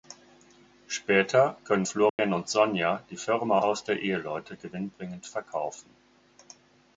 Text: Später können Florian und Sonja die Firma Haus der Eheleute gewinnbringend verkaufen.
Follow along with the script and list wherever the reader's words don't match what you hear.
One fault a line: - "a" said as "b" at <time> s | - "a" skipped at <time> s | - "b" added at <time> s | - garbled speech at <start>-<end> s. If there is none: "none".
none